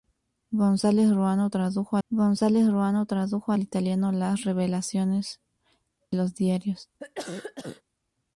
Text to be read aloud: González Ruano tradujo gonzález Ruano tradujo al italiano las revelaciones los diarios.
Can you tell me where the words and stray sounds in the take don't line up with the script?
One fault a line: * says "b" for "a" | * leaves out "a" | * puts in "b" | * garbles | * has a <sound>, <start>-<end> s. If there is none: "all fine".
* has a cough, 7.0-7.8 s